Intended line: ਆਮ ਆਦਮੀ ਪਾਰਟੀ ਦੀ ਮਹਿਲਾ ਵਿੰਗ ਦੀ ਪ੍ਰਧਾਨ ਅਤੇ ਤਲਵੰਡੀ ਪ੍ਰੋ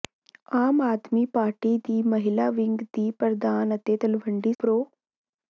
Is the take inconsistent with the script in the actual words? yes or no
no